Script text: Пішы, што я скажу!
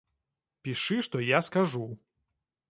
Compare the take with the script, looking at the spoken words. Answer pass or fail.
pass